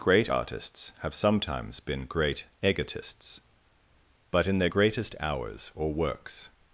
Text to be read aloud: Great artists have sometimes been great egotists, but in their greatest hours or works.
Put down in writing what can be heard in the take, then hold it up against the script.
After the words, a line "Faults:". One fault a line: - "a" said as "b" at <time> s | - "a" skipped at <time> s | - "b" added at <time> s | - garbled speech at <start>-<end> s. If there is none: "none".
Great artists have sometimes been great egotists, but in their greatest hours or works.
Faults:
none